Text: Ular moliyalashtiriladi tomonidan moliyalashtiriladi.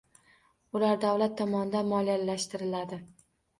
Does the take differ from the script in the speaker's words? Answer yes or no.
yes